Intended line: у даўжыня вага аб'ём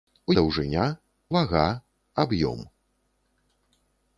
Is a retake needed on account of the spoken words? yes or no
no